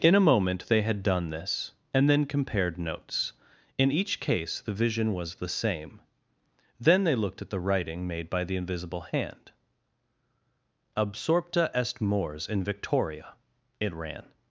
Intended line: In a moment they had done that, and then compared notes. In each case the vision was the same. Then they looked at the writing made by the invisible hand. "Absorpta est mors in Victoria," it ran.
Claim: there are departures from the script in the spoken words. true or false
true